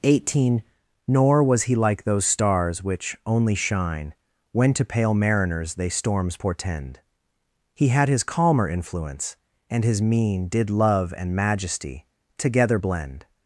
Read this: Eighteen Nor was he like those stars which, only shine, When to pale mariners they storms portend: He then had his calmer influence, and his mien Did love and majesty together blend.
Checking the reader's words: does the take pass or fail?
fail